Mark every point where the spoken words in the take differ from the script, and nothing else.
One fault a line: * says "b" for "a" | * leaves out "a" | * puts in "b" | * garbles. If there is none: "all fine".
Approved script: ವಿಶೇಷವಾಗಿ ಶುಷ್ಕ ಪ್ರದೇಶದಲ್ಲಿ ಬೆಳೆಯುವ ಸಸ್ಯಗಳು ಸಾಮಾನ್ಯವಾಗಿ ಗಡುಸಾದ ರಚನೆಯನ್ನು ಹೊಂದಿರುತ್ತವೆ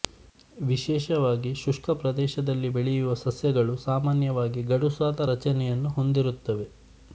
all fine